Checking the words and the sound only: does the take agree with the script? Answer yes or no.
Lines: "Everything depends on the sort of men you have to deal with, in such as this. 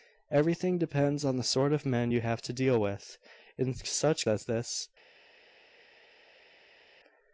yes